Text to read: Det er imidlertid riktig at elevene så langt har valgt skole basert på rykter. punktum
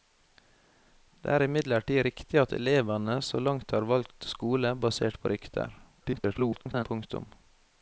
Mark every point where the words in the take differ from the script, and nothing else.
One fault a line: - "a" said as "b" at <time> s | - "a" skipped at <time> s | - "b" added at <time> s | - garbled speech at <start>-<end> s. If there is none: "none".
- garbled speech at 6.0-6.9 s